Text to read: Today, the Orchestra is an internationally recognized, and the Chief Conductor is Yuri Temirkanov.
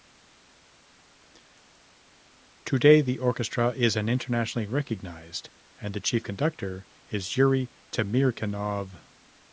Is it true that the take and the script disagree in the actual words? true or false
false